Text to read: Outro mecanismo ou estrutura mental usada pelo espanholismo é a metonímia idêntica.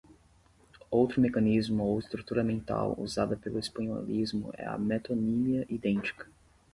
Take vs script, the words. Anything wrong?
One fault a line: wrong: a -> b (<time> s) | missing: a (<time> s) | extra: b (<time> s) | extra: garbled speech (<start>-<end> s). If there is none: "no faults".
no faults